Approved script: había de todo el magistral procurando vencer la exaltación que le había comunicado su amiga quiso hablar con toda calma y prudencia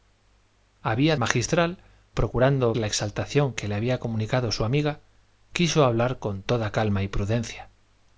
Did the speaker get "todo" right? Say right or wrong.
wrong